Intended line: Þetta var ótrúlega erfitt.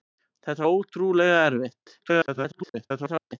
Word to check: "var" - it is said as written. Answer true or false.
false